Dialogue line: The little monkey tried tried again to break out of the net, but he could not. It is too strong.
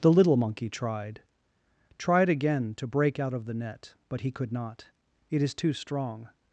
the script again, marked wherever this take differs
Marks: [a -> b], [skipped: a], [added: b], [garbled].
The little monkey tried tried again to break out of the net, but he could not. It is too strong.